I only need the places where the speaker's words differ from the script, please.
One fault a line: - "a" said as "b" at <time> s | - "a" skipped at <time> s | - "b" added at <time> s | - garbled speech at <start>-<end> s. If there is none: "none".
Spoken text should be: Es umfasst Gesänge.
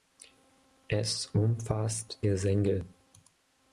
none